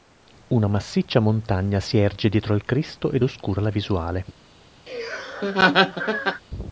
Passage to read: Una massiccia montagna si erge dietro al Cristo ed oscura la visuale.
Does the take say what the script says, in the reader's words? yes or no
yes